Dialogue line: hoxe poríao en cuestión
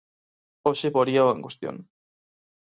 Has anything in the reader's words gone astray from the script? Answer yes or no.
no